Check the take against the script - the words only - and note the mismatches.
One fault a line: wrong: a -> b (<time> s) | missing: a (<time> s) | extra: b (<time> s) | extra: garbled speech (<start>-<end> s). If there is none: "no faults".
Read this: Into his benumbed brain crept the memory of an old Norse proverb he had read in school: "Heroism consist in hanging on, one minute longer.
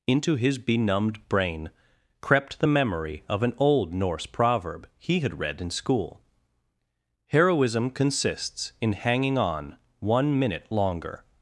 wrong: consist -> consists (7.9 s)